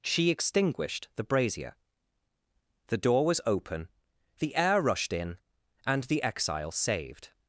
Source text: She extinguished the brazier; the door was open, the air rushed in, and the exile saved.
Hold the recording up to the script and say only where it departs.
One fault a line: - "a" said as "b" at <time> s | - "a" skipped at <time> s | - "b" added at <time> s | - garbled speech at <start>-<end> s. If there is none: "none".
none